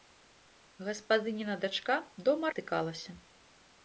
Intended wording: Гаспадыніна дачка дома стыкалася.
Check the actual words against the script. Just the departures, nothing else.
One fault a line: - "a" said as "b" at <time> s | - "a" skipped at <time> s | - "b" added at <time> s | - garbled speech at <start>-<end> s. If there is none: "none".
none